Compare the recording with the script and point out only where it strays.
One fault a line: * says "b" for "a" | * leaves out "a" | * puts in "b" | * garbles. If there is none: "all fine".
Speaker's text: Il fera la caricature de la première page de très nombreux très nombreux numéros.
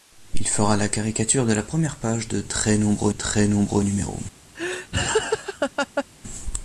all fine